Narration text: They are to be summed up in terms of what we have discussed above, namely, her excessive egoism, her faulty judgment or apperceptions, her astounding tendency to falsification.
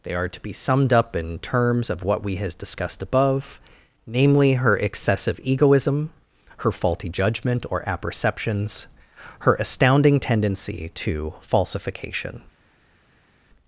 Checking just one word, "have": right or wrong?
wrong